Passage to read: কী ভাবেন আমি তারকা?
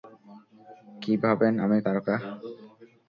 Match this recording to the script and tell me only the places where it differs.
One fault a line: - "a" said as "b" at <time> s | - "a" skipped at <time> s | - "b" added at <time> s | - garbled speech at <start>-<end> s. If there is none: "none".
none